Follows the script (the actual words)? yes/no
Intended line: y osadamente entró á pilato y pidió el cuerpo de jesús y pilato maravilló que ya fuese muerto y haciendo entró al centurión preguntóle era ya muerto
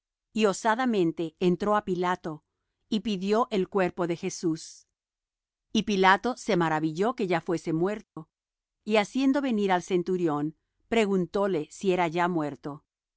no